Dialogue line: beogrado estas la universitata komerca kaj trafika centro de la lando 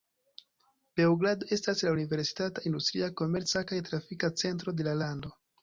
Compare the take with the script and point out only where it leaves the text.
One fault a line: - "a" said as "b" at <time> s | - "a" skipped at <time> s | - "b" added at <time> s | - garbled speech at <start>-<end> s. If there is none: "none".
- "industria" added at 2.7 s